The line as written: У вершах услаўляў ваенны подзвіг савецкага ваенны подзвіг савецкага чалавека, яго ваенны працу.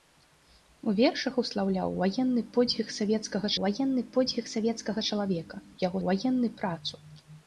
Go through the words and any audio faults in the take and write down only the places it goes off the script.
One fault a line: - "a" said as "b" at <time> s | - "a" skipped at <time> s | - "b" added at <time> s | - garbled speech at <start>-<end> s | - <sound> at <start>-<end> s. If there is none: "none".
none